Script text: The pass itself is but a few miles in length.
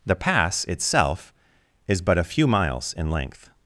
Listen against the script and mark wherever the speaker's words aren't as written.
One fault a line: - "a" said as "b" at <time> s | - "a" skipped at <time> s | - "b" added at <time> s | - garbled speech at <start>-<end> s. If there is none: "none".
none